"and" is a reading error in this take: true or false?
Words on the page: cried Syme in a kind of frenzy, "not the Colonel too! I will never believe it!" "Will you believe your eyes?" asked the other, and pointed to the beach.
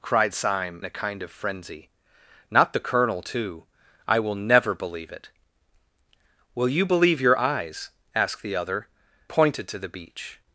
true